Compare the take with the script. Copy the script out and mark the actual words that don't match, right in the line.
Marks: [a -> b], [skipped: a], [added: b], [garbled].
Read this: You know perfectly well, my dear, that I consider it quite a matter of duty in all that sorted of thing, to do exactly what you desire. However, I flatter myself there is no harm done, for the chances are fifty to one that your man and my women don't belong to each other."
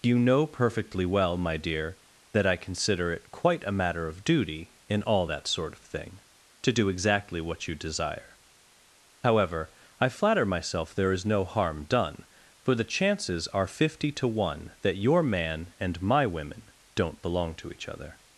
You know perfectly well, my dear, that I consider it quite a matter of duty in all that [sorted -> sort] of thing, to do exactly what you desire. However, I flatter myself there is no harm done, for the chances are fifty to one that your man and my women don't belong to each other."